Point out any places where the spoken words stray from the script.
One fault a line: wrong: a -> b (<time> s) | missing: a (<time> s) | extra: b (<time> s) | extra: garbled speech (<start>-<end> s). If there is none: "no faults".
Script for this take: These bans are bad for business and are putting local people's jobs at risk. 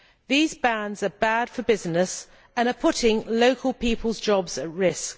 no faults